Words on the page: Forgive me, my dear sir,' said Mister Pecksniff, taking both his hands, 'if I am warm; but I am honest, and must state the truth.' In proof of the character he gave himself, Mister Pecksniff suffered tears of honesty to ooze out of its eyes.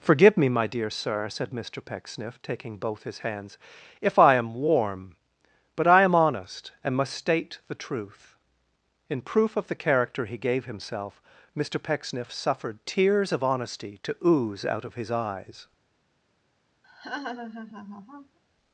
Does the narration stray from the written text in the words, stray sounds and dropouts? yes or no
yes